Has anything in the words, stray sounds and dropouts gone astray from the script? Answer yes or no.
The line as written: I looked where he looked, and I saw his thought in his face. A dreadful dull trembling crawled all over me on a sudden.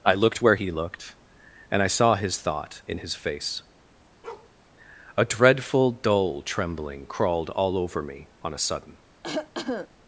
yes